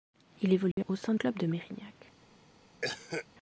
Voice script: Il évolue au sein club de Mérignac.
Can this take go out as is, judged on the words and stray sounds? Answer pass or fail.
fail